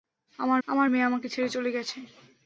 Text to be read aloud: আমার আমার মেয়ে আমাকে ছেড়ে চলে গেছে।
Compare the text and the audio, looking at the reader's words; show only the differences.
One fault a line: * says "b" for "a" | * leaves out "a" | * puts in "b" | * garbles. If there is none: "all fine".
all fine